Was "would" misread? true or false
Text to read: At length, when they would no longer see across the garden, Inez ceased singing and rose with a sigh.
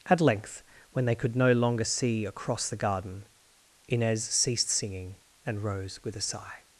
true